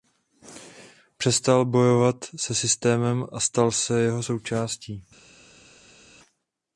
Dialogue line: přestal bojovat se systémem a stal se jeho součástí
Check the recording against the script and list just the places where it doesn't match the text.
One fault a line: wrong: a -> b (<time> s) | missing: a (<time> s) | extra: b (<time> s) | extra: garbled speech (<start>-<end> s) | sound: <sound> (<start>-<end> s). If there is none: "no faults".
no faults